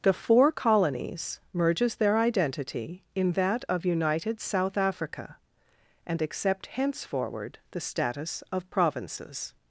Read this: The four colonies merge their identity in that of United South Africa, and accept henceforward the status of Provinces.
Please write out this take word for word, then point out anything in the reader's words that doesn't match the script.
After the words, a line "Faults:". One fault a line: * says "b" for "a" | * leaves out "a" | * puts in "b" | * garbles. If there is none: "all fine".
The four colonies merges their identity in that of United South Africa, and accept henceforward the status of Provinces.
Faults:
* says "merges" for "merge"